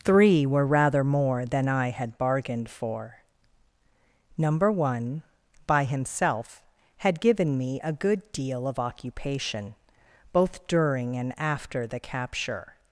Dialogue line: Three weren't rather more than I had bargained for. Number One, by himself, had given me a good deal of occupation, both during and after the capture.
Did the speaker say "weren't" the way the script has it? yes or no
no